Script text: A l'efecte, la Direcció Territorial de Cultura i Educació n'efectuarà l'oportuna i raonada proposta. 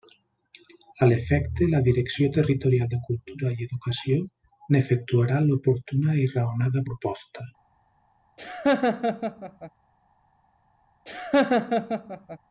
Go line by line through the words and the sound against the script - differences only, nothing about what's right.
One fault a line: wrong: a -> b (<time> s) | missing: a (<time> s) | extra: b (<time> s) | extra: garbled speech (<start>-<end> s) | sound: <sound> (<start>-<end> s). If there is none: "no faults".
sound: laugh (8.4-9.7 s)
sound: laugh (11.1-12.4 s)